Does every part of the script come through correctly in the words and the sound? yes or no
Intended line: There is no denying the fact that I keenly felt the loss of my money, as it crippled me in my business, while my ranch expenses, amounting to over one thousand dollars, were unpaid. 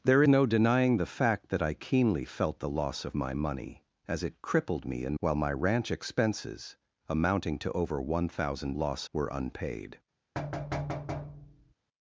no